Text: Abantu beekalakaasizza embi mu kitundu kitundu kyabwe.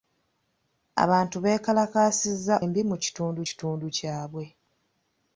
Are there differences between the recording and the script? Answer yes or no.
no